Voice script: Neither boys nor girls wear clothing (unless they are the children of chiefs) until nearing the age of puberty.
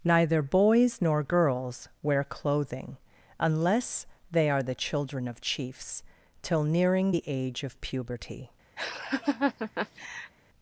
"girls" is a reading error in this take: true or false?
false